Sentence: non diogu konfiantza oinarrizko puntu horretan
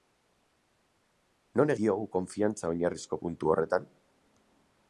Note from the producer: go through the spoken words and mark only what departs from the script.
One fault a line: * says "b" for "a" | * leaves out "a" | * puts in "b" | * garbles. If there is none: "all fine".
all fine